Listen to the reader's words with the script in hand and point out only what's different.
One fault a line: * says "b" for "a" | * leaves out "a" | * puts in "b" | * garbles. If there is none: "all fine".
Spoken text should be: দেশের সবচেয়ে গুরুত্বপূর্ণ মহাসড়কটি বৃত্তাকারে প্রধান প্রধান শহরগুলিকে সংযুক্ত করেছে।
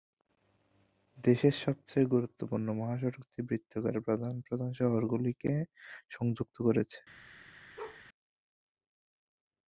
all fine